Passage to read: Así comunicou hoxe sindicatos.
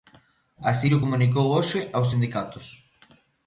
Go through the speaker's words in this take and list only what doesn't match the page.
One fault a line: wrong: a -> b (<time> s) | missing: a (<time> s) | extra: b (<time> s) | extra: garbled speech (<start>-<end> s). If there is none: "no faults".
extra: llo (0.9 s)
extra: aos (1.9 s)